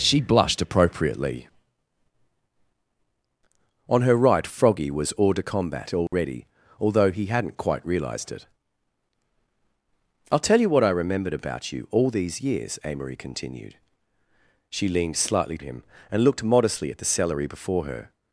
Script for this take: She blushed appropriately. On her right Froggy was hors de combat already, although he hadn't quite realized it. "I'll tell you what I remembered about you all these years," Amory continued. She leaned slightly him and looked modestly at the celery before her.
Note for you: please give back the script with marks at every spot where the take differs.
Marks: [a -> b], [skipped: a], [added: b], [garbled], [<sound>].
She blushed appropriately. On her right Froggy was hors de combat already, [dropout] although he hadn't quite realized it. "I'll tell you what I remembered about you all these years," Amory continued. She leaned slightly him and looked modestly at the celery before her.